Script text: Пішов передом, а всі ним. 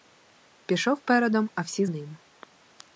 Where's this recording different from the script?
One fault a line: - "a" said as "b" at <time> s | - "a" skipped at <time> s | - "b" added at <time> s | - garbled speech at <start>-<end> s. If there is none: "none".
none